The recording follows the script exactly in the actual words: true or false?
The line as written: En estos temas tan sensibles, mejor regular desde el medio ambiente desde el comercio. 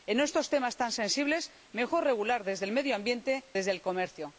true